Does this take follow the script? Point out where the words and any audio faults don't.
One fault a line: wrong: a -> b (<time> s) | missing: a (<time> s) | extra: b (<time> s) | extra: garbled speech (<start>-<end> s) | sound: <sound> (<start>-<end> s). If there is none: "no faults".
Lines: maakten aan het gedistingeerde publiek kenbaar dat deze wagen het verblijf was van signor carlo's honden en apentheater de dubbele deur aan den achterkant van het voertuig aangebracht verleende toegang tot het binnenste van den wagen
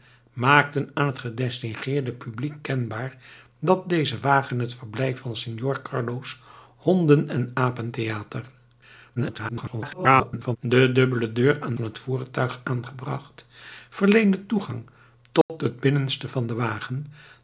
missing: was (5.2 s)
extra: garbled speech (9.2-10.6 s)
missing: den achterkant (11.8 s)
sound: dropout (15.4-15.5 s)